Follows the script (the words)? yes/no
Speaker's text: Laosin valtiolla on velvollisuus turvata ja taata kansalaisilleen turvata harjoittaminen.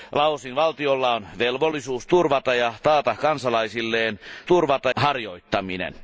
yes